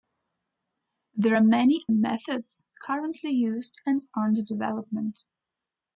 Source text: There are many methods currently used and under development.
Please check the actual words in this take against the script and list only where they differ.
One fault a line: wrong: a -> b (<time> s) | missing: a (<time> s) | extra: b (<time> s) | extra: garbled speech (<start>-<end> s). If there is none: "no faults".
no faults